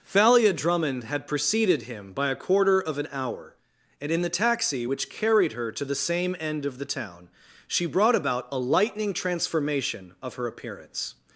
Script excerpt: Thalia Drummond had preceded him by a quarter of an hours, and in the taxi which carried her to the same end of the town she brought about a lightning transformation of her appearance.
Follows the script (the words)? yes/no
no